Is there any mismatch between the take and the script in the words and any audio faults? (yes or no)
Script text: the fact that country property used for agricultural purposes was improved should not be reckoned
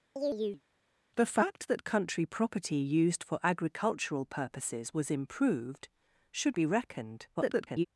yes